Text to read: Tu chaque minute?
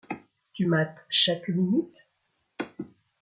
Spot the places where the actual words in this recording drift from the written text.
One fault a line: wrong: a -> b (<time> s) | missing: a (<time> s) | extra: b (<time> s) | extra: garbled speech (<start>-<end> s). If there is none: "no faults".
extra: mates (0.6 s)